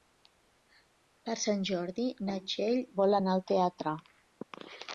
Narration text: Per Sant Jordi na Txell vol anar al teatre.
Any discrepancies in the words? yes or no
no